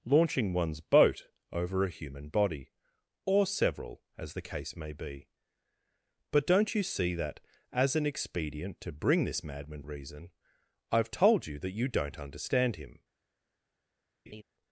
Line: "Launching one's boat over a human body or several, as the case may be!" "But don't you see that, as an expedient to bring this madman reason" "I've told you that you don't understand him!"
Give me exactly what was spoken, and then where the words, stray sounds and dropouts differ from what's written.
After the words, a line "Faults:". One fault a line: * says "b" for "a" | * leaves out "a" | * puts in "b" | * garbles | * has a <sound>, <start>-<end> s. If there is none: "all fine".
"Launching one's boat over a human body or several, as the case may be!" "But don't you see that, as an expedient to bring this madman reason" "I've told you that you don't understand him!"
Faults:
* has a laugh, 14.3-14.4 s